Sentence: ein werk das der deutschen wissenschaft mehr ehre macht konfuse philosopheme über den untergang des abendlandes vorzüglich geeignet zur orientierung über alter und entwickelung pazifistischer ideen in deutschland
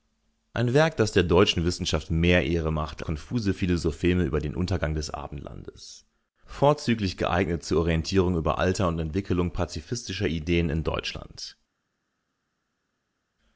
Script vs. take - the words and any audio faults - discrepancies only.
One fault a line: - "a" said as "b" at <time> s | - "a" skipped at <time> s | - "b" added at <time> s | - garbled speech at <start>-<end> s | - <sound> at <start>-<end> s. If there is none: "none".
none